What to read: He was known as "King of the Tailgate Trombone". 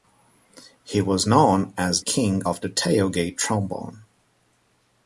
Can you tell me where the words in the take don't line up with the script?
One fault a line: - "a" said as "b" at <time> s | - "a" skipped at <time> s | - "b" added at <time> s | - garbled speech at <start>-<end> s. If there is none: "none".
none